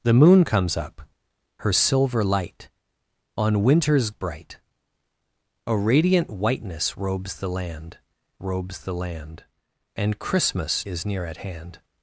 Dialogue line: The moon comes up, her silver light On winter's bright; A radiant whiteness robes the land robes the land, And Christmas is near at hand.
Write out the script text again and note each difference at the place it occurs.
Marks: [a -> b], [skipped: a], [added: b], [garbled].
The moon comes up, her silver light On winter's bright; A radiant whiteness robes the land robes the land, And Christmas is near at hand.